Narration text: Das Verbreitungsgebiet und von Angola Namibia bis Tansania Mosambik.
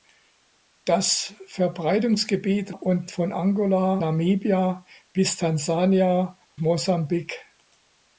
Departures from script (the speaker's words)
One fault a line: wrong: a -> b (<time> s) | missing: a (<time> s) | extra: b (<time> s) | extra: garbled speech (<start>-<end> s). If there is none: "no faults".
no faults